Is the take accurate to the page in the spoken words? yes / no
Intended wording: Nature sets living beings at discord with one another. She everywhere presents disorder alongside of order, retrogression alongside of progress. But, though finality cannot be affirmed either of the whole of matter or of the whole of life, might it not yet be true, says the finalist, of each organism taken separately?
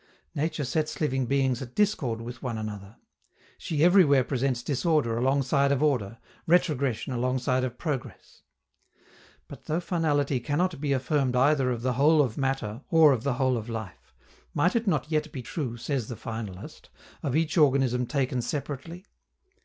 yes